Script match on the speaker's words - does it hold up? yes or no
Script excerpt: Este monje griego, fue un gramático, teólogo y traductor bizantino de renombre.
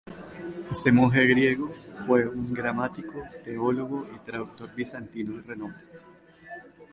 yes